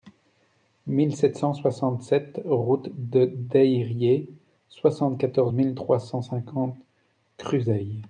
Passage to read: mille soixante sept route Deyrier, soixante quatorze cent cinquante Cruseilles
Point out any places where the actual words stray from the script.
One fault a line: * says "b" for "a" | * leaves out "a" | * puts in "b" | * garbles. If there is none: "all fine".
* puts in "sept cent"
* puts in "de"
* puts in "mille trois"